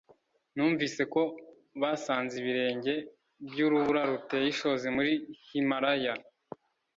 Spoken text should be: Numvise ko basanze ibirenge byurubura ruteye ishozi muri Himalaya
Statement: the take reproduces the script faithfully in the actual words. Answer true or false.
true